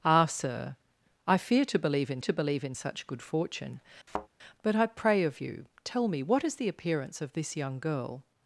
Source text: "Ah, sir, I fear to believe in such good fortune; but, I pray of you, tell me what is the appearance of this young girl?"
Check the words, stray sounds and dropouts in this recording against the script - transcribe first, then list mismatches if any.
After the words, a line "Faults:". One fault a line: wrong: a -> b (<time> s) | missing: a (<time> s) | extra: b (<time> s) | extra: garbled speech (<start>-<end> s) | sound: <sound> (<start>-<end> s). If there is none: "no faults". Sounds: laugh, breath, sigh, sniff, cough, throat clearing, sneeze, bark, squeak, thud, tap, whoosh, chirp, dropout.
"Ah, sir, I fear to believe in to believe in such good fortune; but, I pray of you, tell me what is the appearance of this young girl?"
Faults:
extra: to believe in (2.2 s)
sound: thud (4.1-4.3 s)